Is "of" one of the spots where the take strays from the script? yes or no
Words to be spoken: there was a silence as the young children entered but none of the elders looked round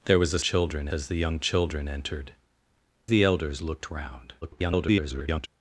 yes